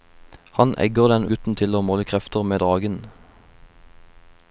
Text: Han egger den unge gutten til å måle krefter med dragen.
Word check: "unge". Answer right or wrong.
wrong